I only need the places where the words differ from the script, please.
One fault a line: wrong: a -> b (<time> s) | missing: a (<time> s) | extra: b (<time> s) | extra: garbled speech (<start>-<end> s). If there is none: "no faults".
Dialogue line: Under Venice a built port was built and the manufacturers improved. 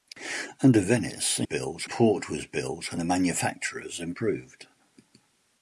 no faults